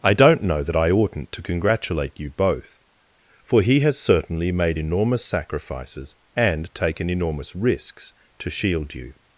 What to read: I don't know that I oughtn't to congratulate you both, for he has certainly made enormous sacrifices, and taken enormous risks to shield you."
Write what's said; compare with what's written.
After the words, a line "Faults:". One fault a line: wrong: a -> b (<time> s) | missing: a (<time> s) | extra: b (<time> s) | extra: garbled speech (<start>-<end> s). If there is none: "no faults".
I don't know that I oughtn't to congratulate you both, for he has certainly made enormous sacrifices, and taken enormous risks to shield you."
Faults:
no faults